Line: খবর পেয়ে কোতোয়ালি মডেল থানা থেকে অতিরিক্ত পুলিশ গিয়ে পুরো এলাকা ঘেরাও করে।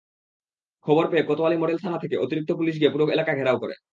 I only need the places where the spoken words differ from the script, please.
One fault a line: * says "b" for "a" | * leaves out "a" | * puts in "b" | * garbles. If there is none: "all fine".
all fine